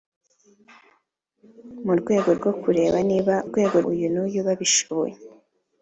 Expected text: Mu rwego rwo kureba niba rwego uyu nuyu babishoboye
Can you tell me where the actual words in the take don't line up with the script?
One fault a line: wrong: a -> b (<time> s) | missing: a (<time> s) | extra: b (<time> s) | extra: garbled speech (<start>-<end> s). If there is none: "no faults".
no faults